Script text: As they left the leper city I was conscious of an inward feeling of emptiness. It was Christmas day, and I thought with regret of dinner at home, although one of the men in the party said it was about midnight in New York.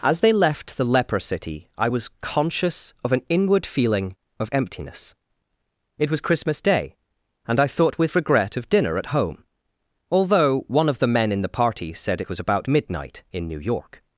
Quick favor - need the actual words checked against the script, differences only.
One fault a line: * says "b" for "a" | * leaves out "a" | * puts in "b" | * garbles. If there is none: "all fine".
all fine